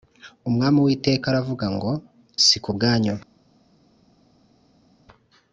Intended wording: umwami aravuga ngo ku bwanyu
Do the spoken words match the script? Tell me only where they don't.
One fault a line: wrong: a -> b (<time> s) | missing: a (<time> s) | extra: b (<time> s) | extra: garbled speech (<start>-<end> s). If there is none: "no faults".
extra: uwiteka (0.8 s)
extra: si (2.5 s)